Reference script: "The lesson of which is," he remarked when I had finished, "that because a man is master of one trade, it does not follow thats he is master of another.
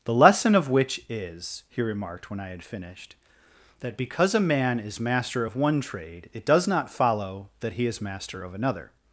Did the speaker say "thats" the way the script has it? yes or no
no